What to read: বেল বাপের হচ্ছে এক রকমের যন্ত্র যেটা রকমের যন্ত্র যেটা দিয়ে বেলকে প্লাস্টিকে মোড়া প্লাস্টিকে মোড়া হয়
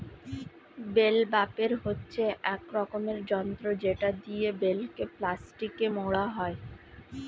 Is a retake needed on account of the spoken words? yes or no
yes